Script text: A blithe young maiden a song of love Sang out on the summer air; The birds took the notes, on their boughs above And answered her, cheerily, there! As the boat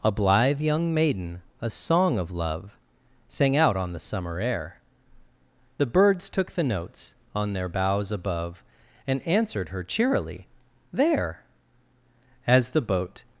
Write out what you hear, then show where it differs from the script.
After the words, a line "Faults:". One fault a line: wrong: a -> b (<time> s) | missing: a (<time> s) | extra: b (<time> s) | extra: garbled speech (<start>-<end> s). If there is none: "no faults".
A blithe young maiden a song of love Sang out on the summer air; The birds took the notes, on their boughs above And answered her, cheerily, there! As the boat
Faults:
no faults